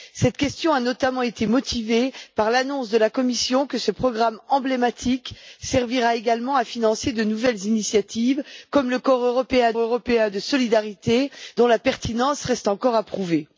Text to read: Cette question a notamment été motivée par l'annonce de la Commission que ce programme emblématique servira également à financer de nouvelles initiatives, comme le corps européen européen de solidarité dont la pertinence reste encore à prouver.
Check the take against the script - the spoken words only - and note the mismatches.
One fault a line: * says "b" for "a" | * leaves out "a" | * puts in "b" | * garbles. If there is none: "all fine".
all fine